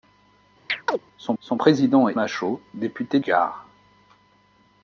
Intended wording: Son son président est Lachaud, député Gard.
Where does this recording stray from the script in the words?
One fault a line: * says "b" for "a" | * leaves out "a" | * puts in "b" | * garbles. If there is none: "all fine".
all fine